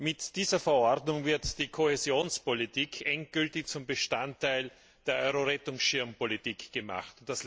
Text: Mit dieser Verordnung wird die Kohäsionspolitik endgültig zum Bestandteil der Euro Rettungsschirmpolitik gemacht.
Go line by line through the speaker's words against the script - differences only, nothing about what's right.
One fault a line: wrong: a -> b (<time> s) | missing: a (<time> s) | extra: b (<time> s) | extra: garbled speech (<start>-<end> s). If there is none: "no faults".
no faults